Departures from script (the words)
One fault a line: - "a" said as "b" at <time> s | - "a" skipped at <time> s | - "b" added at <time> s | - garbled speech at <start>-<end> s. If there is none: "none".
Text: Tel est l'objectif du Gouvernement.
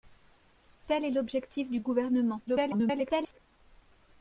- garbled speech at 2.5-3.4 s